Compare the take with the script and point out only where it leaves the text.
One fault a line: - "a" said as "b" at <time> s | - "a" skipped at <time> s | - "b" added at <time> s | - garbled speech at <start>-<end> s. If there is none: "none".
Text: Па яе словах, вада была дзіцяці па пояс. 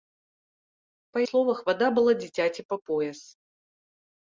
- "яе" skipped at 1.2 s